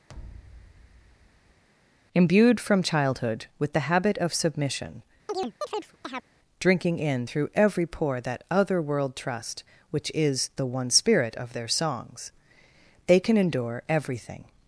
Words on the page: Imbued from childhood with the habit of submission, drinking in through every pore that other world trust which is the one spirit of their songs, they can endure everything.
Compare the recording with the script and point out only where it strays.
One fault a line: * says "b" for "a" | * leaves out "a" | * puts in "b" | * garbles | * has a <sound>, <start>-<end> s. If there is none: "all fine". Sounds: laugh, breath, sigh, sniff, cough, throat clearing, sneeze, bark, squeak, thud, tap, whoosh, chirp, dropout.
* has a thud, 0.1-1.6 s
* has a chirp, 5.3-6.3 s